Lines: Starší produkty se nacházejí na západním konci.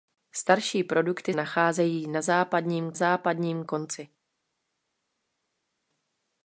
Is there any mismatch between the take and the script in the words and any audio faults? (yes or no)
yes